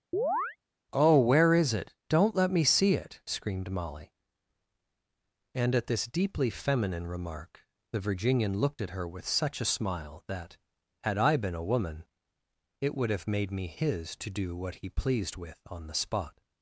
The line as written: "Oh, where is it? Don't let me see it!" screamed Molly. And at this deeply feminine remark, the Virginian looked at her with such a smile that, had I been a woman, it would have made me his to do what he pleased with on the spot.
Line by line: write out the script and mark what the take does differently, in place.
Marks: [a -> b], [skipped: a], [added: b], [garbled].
"Oh, where is it? Don't let me see it!" screamed Molly. And at this deeply feminine remark, the Virginian looked at her with such a smile that, had I been a woman, it would have made me his to do what he pleased with on the spot.